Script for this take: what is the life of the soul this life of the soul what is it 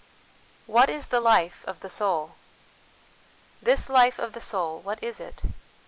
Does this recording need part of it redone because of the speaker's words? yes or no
no